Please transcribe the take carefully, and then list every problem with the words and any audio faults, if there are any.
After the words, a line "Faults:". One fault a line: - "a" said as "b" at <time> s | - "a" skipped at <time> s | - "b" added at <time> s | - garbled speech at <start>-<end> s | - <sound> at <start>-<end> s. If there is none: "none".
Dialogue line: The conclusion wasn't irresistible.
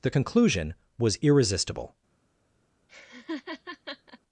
The conclusion was irresistible.
Faults:
- "wasn't" said as "was" at 1.0 s
- laugh at 2.9-4.2 s